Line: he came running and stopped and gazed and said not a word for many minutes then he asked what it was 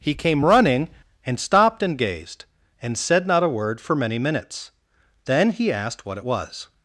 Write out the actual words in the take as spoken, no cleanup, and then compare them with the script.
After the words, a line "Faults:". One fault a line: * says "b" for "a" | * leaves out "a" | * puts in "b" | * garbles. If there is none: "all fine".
he came running and stopped and gazed and said not a word for many minutes then he asked what it was
Faults:
all fine